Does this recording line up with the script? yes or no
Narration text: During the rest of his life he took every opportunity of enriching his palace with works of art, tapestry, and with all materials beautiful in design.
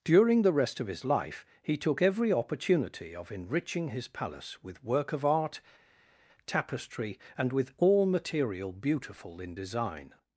no